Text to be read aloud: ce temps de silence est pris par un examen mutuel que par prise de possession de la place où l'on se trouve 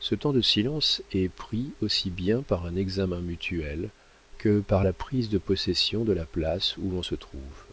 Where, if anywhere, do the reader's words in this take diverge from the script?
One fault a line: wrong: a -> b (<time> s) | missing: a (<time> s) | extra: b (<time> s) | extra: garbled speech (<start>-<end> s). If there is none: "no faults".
extra: aussi bien (1.8 s)
extra: la (4.8 s)